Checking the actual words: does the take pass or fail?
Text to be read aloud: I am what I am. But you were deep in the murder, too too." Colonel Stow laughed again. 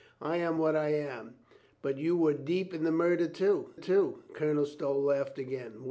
pass